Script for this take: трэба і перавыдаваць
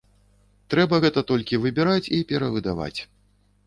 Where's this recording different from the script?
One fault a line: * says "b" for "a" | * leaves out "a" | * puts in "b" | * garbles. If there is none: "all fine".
* puts in "гэта толькі выбіраць"